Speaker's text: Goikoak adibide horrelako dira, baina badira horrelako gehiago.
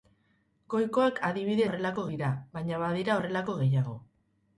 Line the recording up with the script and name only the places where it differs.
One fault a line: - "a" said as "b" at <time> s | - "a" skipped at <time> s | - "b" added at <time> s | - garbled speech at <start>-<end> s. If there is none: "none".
none